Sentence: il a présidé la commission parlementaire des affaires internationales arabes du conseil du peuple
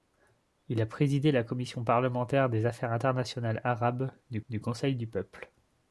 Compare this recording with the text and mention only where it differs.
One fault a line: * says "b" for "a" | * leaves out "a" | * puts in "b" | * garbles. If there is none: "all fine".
* puts in "du"